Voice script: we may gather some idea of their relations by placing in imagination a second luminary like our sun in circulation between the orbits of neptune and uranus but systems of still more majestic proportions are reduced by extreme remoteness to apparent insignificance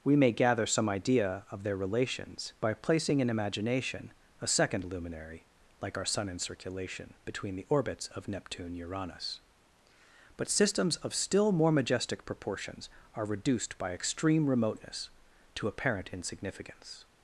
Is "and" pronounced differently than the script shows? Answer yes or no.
yes